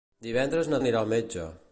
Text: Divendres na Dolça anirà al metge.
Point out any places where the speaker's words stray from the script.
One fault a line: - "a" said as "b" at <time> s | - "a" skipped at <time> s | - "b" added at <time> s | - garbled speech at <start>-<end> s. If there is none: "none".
- "Dolça" skipped at 0.8 s